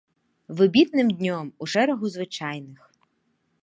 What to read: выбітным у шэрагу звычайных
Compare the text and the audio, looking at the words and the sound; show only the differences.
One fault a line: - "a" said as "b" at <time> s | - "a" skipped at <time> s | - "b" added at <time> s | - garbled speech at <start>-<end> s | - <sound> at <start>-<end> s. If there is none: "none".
- "днём" added at 1.2 s